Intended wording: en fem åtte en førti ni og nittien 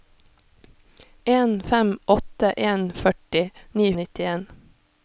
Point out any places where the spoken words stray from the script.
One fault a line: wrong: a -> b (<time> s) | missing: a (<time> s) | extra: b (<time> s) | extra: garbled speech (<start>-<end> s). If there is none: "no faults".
no faults